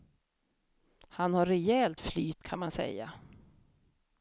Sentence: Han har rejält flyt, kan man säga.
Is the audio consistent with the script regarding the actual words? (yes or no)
yes